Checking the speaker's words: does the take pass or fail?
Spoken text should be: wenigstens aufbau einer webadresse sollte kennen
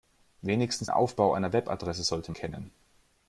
pass